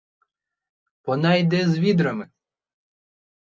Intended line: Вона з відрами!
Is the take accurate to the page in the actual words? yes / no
no